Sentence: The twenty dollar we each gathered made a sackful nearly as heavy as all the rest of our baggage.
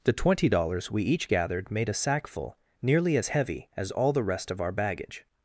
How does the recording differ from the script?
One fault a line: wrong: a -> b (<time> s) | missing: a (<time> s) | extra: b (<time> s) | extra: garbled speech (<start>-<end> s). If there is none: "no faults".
wrong: dollar -> dollars (0.5 s)